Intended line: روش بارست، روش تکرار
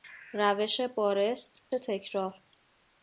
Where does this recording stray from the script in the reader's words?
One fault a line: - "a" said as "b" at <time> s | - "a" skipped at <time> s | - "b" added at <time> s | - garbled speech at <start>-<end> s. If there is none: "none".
- "روش" skipped at 1.7 s